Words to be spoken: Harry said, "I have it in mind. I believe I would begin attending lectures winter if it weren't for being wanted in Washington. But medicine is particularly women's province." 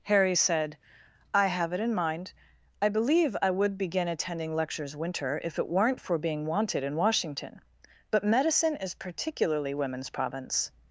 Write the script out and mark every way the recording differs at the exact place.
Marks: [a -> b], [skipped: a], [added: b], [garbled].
Harry said, "I have it in mind. I believe I would begin attending lectures winter if it weren't for being wanted in Washington. But medicine is particularly women's province."